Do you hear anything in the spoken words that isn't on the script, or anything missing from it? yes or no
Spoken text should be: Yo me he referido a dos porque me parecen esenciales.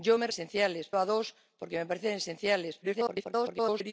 yes